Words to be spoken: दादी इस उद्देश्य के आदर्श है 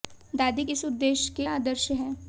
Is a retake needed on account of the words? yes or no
no